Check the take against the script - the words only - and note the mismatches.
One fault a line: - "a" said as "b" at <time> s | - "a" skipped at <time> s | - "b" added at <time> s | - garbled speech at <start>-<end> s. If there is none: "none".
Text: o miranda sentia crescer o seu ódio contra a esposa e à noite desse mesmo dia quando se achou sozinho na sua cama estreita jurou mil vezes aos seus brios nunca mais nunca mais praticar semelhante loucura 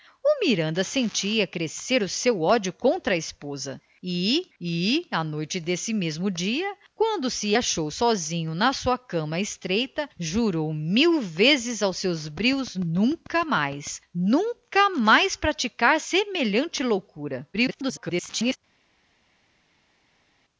- "e" added at 4.6 s
- garbled speech at 17.5-18.6 s